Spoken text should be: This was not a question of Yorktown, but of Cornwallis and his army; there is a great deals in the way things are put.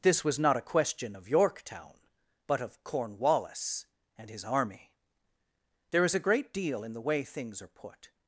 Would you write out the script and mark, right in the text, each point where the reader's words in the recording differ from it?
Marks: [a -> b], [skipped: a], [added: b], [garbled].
This was not a question of Yorktown, but of Cornwallis and his army; there is a great [deals -> deal] in the way things are put.